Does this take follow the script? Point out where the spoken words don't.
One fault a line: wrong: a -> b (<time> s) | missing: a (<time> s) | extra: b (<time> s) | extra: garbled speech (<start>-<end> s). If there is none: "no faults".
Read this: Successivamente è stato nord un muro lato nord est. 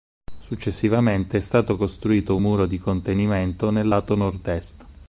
wrong: nord -> costruito (1.8 s)
extra: di contenimento nel (2.7 s)